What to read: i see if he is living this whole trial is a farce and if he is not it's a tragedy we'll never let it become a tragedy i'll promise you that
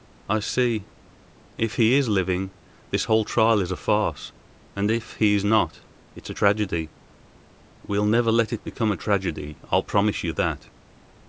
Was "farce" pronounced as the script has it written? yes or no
yes